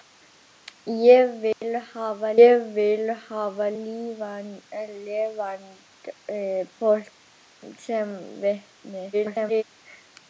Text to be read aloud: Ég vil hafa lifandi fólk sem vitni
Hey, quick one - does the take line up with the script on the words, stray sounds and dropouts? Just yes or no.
no